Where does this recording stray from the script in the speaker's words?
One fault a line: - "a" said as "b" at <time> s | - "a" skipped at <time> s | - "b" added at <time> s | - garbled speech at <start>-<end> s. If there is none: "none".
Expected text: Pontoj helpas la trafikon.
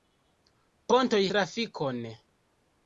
- "helpas la" skipped at 1.2 s